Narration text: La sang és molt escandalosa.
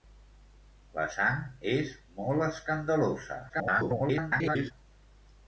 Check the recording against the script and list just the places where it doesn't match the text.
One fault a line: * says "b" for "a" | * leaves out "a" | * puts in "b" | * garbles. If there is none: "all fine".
* garbles